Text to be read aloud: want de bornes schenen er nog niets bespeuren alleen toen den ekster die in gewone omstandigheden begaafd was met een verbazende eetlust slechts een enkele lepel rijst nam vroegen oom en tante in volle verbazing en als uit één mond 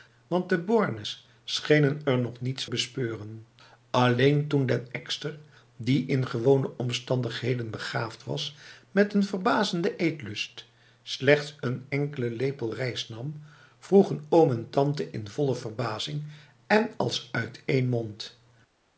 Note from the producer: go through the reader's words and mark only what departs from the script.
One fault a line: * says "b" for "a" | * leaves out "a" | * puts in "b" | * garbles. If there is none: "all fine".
all fine